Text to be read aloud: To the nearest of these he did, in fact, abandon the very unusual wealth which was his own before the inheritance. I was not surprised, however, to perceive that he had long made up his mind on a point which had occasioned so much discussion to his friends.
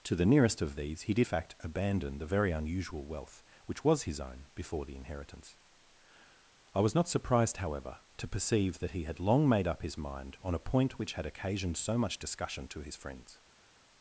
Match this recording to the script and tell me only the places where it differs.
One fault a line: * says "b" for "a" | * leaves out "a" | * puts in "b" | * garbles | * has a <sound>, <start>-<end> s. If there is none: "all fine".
* leaves out "in"